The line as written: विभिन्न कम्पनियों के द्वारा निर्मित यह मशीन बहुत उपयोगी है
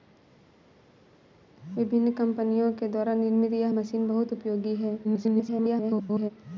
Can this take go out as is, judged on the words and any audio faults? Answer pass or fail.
fail